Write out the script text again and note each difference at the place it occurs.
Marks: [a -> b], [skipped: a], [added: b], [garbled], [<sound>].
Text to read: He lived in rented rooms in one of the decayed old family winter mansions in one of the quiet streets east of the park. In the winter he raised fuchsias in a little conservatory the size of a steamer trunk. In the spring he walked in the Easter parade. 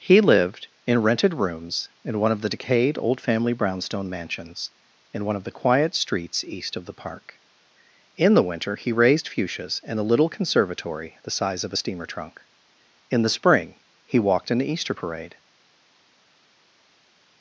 He lived in rented rooms in one of the decayed old family [winter -> brownstone] mansions in one of the quiet streets east of the park. In the winter he raised fuchsias in a little conservatory the size of a steamer trunk. In the spring he walked in the Easter parade.